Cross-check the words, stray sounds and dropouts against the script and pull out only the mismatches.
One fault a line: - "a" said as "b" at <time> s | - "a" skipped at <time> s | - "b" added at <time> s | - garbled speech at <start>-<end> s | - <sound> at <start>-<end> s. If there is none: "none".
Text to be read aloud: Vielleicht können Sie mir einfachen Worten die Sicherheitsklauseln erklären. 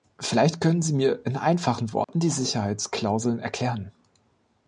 - "in" added at 1.3 s
- dropout at 2.0-2.1 s